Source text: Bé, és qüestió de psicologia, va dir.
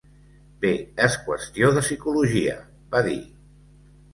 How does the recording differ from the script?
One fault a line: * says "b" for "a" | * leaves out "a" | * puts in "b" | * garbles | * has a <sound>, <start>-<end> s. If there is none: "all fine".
all fine